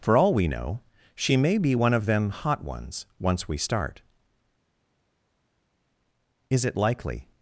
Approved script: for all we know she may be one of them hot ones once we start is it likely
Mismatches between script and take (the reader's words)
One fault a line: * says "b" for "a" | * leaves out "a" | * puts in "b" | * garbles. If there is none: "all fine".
all fine